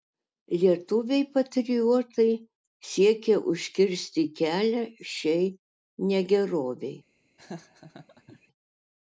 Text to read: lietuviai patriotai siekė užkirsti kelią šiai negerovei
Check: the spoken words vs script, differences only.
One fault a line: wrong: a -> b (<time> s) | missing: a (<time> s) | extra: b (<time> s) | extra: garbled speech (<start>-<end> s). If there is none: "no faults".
no faults